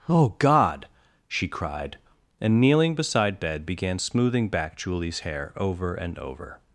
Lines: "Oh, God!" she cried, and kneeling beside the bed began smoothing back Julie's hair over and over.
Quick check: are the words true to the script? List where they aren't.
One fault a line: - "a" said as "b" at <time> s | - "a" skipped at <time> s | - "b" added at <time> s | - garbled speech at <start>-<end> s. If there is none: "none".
- "the" skipped at 3.4 s